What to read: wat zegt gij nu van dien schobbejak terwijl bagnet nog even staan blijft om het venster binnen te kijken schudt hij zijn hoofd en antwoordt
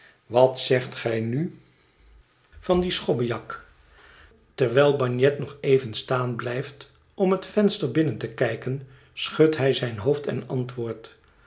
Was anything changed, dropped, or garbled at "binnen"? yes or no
no